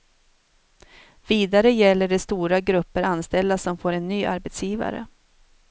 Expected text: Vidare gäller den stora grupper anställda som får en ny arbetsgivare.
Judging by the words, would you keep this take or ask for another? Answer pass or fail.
fail